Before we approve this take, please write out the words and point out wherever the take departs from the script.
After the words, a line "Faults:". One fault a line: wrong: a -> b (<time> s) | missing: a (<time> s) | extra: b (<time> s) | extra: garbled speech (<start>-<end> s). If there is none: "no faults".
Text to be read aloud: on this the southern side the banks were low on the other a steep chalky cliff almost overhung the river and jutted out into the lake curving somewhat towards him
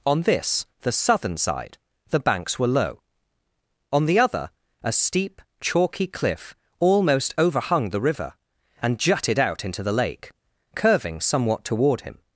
on this the southern side the banks were low on the other a steep chalky cliff almost overhung the river and jutted out into the lake curving somewhat toward him
Faults:
wrong: towards -> toward (11.6 s)